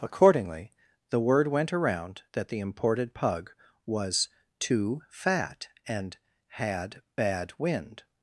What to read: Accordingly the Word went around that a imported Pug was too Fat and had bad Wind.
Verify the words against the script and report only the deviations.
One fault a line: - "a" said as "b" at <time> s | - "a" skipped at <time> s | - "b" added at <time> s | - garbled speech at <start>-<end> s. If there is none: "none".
- "a" said as "the" at 2.5 s